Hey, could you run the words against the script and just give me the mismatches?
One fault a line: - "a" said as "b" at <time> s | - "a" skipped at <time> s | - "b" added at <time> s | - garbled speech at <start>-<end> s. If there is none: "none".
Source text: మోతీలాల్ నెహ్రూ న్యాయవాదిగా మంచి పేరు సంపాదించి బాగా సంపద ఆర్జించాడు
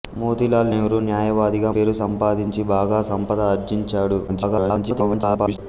- "మంచి" skipped at 1.7 s
- garbled speech at 4.3-5.6 s